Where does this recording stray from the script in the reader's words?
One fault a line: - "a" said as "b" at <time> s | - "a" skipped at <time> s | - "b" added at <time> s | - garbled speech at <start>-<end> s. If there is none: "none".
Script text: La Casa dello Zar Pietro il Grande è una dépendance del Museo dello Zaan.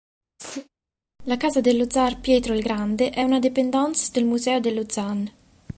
none